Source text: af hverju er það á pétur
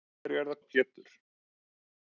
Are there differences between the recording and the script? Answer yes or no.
no